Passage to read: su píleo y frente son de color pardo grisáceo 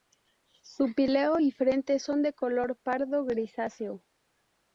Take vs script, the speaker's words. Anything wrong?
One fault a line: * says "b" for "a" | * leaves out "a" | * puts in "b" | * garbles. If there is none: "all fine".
all fine